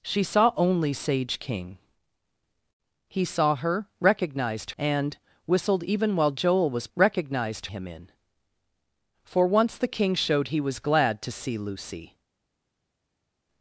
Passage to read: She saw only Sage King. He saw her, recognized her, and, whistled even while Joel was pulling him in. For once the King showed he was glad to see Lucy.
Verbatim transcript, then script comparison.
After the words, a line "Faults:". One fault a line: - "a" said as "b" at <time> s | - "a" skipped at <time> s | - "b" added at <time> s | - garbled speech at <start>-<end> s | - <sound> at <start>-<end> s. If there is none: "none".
She saw only Sage King. He saw her, recognized and, whistled even while Joel was recognized him in. For once the King showed he was glad to see Lucy.
Faults:
- "her" skipped at 4.7 s
- "pulling" said as "recognized" at 6.9 s